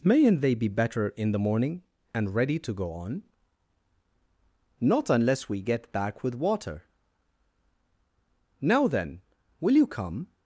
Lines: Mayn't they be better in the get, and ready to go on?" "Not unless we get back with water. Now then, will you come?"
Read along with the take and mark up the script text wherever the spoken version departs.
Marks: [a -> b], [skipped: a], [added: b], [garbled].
Mayn't they be better in the [get, -> morning] and ready to go on?" "Not unless we get back with water. Now then, will you come?"